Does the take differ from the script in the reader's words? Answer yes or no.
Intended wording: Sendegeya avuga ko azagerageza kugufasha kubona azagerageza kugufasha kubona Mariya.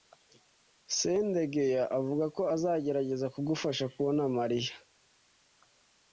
yes